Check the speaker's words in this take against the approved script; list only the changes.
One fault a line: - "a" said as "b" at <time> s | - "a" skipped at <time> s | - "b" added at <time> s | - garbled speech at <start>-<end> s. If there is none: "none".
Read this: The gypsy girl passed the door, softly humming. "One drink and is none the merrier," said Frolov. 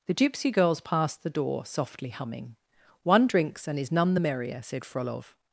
- "girl" said as "girls" at 0.5 s
- "drink" said as "drinks" at 3.3 s